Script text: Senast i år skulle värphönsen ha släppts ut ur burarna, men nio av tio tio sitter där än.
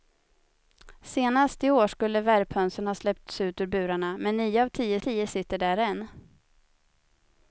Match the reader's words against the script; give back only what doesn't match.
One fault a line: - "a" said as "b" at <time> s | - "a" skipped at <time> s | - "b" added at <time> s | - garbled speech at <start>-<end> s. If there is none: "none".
none